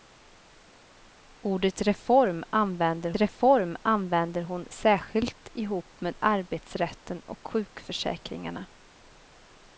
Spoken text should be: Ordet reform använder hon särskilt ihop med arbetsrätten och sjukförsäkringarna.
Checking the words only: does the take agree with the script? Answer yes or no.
no